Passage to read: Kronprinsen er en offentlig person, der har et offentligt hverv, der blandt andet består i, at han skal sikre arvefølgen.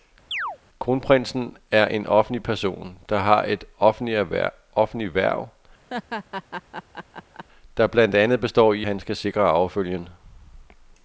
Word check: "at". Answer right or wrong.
wrong